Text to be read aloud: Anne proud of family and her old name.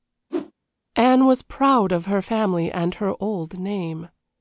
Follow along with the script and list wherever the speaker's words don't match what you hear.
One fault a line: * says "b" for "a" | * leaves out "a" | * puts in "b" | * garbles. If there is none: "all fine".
* puts in "was"
* puts in "her"